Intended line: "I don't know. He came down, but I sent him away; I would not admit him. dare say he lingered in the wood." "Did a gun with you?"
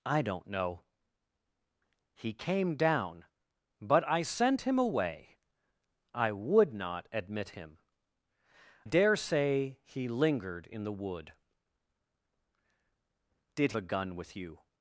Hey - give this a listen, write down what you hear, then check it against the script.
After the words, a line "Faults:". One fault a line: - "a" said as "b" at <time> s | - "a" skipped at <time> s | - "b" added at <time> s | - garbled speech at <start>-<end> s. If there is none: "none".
"I don't know. He came down, but I sent him away; I would not admit him. dare say he lingered in the wood." "Did a gun with you?"
Faults:
none